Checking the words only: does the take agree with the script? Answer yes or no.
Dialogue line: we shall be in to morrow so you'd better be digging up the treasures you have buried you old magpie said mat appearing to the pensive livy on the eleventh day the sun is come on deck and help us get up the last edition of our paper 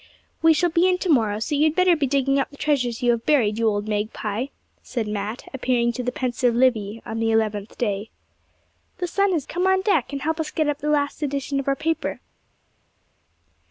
yes